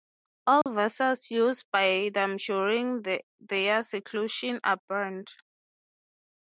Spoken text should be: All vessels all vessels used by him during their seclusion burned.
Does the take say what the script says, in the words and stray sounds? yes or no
no